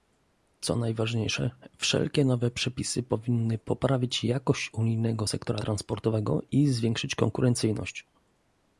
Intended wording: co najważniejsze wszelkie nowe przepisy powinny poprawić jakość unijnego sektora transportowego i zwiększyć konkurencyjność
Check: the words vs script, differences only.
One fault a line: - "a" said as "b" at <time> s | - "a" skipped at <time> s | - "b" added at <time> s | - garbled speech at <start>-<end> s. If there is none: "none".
none